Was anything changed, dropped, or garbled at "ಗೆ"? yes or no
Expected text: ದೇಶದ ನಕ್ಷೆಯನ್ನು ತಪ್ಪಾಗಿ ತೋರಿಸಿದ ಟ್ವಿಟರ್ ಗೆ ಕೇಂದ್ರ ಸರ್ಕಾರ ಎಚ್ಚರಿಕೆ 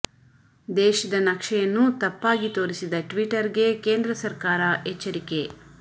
no